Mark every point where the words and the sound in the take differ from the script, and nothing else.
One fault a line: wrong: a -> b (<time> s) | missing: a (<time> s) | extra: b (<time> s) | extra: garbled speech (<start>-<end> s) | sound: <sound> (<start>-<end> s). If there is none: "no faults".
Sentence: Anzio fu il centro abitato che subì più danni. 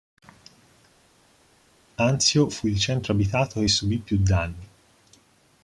no faults